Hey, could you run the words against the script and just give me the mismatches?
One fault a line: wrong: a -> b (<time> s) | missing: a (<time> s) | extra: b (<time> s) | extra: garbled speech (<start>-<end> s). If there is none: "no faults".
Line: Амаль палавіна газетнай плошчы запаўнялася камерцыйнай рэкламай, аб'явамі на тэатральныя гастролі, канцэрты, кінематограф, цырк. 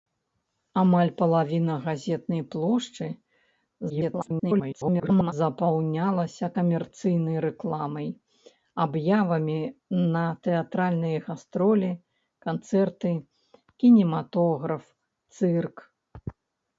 extra: garbled speech (3.9-5.3 s)